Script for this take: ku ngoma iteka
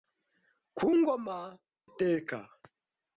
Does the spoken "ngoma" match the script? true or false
true